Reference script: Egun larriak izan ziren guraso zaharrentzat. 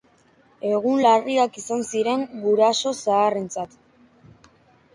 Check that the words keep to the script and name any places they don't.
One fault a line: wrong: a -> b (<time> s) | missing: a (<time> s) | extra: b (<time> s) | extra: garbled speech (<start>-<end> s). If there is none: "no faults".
no faults